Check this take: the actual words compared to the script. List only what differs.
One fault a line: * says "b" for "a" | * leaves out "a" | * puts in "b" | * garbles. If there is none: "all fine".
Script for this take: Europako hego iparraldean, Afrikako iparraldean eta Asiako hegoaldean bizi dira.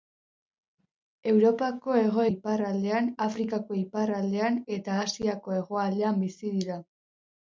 all fine